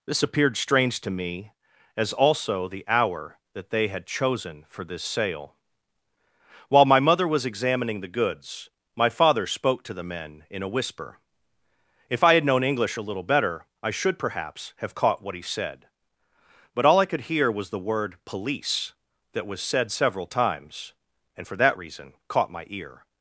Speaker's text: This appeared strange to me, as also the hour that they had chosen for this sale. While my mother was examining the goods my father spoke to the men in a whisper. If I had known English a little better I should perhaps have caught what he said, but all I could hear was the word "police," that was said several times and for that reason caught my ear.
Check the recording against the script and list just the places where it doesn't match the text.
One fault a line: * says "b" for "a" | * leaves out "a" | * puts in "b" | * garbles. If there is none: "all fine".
all fine